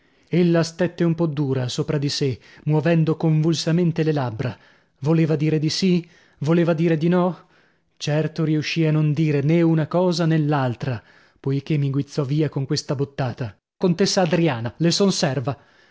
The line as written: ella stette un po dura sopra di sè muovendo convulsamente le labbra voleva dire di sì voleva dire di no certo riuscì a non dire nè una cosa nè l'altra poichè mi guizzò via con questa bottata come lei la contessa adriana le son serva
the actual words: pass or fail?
fail